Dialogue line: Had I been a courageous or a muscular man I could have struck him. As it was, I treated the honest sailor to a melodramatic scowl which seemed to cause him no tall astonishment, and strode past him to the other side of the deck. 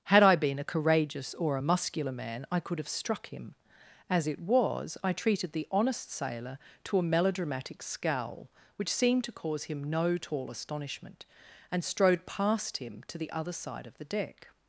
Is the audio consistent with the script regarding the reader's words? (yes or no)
yes